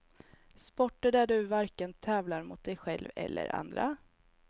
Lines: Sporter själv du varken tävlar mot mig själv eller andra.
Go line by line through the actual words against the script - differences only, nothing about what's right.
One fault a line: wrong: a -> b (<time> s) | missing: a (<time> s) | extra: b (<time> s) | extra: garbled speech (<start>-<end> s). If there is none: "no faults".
wrong: själv -> där (1.1 s)
wrong: mig -> dig (2.6 s)